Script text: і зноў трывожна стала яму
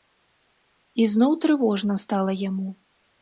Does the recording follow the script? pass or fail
pass